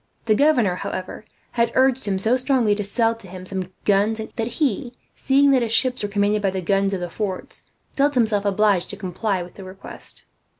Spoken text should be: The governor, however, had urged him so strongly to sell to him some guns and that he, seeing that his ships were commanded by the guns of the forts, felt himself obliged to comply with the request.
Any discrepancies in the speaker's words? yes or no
no